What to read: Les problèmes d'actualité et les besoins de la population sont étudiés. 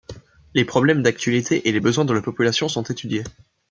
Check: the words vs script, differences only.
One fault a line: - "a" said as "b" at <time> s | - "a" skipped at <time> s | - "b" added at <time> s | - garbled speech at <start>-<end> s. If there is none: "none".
none